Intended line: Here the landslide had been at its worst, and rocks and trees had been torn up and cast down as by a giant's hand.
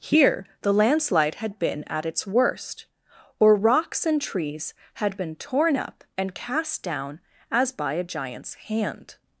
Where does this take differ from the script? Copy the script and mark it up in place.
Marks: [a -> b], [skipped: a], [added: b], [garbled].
Here the landslide had been at its worst, [and -> or] rocks and trees had been torn up and cast down as by a giant's hand.